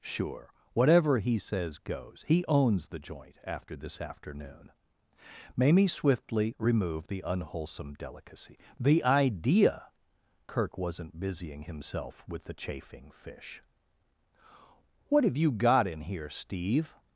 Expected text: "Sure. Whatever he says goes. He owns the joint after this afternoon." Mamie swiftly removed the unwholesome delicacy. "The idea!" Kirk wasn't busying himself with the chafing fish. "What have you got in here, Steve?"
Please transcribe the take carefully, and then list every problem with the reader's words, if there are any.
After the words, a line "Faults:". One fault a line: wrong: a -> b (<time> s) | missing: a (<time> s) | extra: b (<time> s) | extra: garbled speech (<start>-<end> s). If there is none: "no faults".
"Sure. Whatever he says goes. He owns the joint after this afternoon." Mamie swiftly removed the unwholesome delicacy. "The idea!" Kirk wasn't busying himself with the chafing fish. "What have you got in here, Steve?"
Faults:
no faults